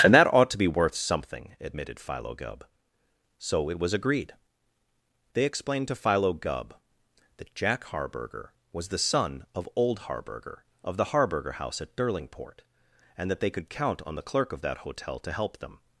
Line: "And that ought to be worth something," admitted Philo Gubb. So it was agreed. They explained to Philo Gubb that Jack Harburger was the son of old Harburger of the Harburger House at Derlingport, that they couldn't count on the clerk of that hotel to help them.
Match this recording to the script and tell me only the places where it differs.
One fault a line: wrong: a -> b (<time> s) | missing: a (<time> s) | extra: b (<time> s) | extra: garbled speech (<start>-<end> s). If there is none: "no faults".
extra: and (13.2 s)
wrong: couldn't -> could (13.5 s)